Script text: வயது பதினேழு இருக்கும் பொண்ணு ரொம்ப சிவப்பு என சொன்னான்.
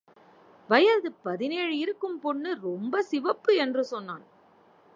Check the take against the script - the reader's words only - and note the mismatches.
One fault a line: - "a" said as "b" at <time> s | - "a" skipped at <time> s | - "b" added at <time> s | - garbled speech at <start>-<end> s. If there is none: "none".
- "என" said as "என்று" at 3.5 s